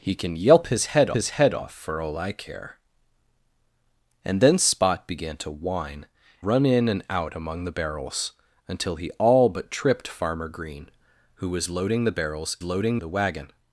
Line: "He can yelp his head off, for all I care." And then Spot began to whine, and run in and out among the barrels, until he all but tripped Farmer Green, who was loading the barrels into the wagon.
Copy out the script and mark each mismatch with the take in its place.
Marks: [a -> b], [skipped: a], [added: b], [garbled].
"He can yelp his head [added: his head] off, for all I care." And then Spot began to whine, [skipped: and] run in and out among the barrels, until he all but tripped Farmer Green, who was loading the barrels [into -> loading] the wagon.